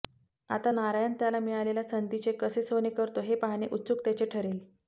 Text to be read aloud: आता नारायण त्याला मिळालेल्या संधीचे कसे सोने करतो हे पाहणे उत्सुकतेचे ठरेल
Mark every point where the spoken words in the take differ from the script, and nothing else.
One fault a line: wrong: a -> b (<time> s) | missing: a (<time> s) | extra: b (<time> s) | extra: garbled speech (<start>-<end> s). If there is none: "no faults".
no faults